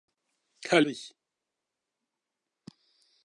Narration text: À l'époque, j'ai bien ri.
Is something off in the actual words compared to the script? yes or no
yes